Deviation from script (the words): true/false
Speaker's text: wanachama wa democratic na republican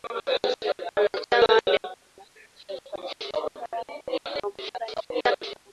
true